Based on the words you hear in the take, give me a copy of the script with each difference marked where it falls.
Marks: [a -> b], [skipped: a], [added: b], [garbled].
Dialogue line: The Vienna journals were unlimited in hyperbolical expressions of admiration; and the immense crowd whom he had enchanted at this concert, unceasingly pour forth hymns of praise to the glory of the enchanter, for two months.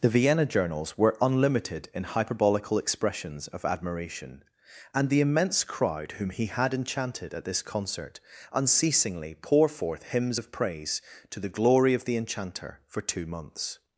The Vienna journals were unlimited in hyperbolical expressions of admiration; and the immense crowd whom he had enchanted at this concert, unceasingly pour forth hymns of praise to the glory of the enchanter, for two months.